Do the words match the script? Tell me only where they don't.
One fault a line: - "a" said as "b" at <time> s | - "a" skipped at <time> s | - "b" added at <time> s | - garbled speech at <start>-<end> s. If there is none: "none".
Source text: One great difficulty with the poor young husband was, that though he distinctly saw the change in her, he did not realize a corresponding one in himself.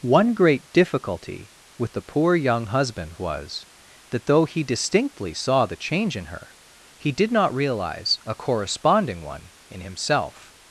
none